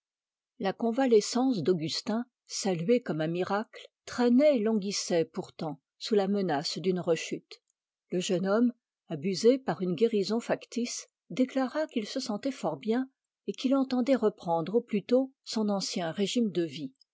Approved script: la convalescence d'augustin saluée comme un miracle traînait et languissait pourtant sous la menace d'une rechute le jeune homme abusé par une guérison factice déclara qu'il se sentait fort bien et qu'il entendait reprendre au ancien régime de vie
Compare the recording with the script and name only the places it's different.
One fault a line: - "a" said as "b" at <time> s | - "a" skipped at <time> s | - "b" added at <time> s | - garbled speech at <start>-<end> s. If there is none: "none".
- "plus tôt son" added at 14.8 s